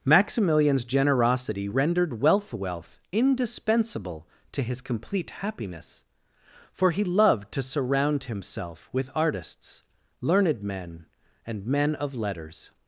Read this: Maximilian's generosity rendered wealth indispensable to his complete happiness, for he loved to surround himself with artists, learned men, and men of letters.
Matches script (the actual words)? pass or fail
fail